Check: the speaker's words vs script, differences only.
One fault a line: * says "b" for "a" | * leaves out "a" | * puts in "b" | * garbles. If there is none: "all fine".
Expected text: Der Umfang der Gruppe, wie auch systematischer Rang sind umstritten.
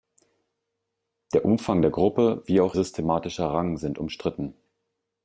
all fine